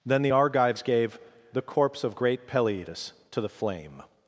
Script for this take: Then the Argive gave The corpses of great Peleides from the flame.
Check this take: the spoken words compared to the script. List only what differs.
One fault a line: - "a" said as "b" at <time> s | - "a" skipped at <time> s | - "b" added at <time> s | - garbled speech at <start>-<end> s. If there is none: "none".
- "Argive" said as "Argives" at 0.3 s
- "corpses" said as "corpse" at 1.6 s
- "from" said as "to" at 3.3 s